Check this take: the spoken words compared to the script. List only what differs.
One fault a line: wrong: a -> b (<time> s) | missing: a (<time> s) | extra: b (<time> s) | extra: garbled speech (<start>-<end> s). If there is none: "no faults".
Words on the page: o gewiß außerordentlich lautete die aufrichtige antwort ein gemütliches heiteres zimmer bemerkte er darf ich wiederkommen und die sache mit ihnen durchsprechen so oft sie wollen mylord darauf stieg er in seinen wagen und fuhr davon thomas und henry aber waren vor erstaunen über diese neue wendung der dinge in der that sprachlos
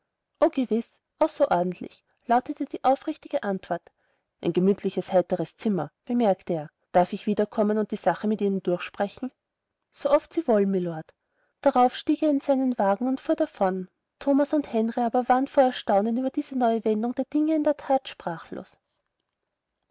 no faults